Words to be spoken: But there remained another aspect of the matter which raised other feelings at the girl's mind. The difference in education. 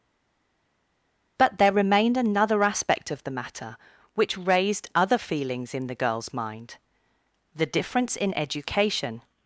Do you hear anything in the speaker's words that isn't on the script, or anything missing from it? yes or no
yes